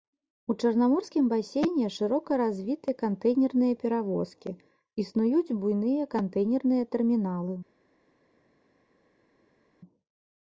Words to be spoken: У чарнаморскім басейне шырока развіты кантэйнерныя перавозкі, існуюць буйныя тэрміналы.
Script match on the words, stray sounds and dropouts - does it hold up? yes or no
no